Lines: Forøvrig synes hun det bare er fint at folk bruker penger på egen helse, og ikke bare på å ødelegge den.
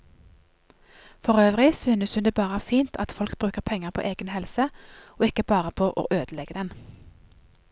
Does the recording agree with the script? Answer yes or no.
yes